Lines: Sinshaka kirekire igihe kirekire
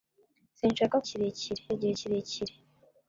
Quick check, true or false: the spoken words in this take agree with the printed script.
true